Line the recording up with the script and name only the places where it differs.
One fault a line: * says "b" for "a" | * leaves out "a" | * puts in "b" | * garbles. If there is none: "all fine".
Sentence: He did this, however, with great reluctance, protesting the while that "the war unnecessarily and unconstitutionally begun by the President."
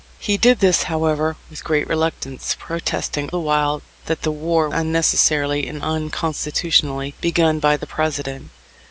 all fine